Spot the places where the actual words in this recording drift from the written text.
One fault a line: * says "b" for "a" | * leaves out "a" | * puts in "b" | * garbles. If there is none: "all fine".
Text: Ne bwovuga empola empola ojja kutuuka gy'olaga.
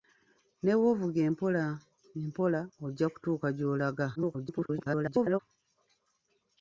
* garbles